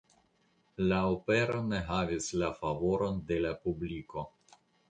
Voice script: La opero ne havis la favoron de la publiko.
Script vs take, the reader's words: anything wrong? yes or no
no